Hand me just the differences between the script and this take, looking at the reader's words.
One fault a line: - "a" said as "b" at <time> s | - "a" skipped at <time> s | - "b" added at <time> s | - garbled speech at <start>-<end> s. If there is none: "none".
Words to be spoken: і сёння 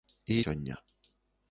none